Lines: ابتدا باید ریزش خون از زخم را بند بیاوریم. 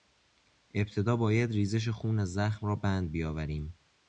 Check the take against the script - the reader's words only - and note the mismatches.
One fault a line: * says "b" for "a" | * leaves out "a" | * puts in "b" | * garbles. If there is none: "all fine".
all fine